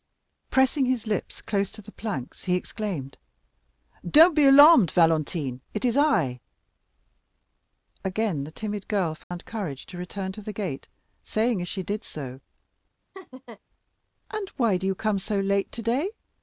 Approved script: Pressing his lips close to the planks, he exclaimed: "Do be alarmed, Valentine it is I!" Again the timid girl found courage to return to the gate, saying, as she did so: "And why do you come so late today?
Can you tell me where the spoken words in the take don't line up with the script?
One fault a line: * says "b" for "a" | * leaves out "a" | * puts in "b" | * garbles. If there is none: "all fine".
* says "Don't" for "Do"